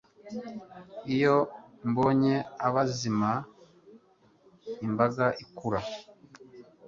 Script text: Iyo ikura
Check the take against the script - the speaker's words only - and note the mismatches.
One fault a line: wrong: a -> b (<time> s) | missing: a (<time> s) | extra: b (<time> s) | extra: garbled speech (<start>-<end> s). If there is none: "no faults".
extra: mbonye abazima imbaga (1.9 s)